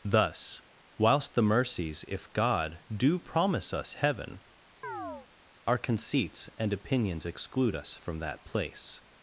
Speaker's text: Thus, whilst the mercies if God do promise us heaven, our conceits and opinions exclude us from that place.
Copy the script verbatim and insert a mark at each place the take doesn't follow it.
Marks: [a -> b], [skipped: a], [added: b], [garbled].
Thus, whilst the mercies if God do promise us heaven, our conceits and opinions exclude us from that place.